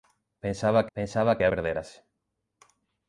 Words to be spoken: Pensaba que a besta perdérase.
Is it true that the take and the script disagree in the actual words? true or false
true